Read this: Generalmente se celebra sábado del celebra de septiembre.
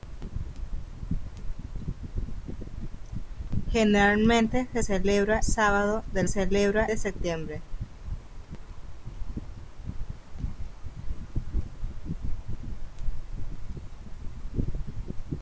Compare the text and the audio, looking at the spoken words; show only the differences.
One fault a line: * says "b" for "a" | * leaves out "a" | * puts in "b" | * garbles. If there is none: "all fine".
all fine